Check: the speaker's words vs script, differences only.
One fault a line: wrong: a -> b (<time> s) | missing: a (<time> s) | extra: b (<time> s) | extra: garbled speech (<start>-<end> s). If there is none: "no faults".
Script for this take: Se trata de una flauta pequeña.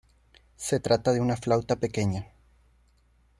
no faults